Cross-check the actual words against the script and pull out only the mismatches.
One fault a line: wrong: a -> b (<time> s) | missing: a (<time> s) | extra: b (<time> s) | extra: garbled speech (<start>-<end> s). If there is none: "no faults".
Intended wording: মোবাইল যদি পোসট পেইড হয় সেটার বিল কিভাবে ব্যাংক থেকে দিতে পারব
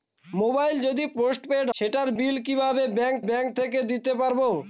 missing: হয় (1.7 s)
extra: ব্যাংক (3.3 s)